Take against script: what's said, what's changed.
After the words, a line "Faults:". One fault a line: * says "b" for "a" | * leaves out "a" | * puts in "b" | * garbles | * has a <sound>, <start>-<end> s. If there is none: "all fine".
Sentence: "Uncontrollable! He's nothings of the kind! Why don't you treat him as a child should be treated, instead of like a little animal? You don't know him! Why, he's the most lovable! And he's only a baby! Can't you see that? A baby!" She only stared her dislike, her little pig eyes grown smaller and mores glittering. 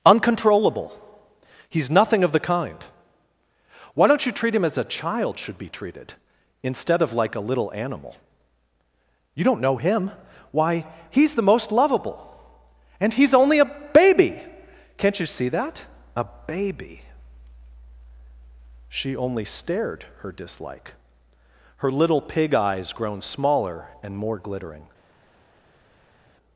"Uncontrollable! He's nothing of the kind! Why don't you treat him as a child should be treated, instead of like a little animal? You don't know him! Why, he's the most lovable! And he's only a baby! Can't you see that? A baby!" She only stared her dislike, her little pig eyes grown smaller and more glittering.
Faults:
* says "nothing" for "nothings"
* says "more" for "mores"